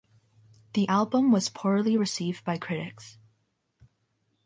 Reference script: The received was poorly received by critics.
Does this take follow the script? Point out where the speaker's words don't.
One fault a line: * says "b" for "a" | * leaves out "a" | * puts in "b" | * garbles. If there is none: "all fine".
* says "album" for "received"